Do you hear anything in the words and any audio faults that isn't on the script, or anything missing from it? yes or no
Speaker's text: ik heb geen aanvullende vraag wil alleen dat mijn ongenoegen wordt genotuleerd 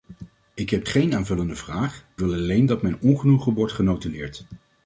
no